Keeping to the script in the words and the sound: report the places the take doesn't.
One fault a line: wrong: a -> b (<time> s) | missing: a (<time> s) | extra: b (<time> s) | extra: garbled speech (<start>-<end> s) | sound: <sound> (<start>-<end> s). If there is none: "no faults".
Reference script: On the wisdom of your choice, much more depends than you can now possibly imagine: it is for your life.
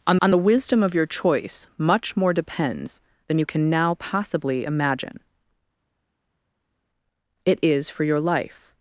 extra: on (0.2 s)